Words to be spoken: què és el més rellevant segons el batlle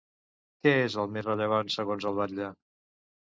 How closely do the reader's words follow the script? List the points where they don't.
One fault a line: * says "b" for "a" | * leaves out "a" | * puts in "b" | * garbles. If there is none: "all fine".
all fine